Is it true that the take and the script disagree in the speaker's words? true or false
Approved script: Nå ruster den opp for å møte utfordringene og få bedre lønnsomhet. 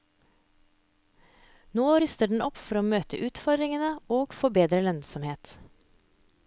false